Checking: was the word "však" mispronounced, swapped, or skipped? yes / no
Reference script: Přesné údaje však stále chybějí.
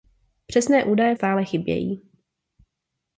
yes